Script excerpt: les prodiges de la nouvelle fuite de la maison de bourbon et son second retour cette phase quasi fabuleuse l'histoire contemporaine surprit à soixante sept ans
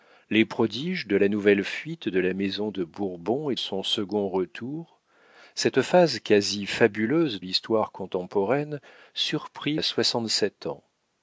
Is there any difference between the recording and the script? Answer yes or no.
no